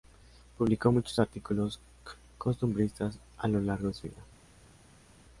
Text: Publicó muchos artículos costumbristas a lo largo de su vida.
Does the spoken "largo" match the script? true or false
true